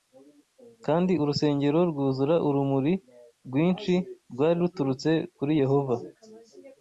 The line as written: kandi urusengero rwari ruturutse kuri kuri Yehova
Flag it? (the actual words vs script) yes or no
yes